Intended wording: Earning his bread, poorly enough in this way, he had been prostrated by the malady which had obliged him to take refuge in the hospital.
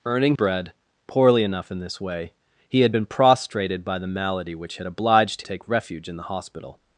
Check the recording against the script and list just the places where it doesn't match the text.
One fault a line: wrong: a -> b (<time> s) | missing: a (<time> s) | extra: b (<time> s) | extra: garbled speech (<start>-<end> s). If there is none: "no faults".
missing: his (0.3 s)
missing: him to (5.4 s)